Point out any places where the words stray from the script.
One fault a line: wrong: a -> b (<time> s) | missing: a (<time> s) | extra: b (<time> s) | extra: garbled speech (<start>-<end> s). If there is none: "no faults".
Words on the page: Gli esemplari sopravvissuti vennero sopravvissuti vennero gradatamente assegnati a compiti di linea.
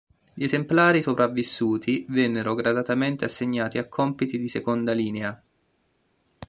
missing: sopravvissuti vennero (2.5 s)
extra: seconda (4.5 s)